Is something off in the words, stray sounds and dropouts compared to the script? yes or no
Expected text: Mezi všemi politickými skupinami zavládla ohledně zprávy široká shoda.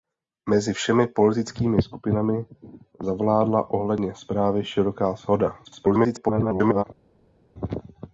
yes